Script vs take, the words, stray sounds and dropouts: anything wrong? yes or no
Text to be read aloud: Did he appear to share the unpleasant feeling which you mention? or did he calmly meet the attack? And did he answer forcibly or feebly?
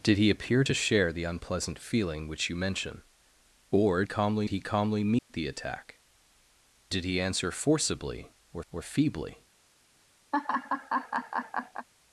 yes